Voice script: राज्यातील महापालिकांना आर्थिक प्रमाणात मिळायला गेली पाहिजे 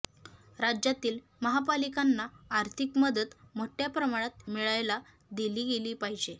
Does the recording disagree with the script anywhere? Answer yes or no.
yes